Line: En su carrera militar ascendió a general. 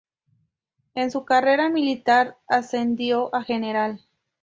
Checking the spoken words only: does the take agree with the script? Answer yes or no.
yes